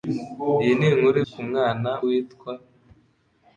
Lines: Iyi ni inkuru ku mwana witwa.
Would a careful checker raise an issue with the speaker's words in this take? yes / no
no